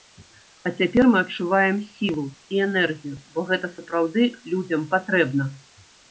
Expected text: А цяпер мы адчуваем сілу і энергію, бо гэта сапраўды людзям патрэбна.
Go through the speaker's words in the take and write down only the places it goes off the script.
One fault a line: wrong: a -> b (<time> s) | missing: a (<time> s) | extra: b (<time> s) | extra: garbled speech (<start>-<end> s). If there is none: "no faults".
no faults